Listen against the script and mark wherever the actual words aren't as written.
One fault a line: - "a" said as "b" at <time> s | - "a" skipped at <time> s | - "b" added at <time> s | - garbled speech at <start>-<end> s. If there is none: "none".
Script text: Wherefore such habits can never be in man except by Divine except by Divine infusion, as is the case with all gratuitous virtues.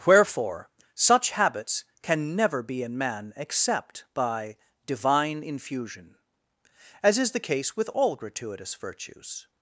- "except by Divine" skipped at 5.4 s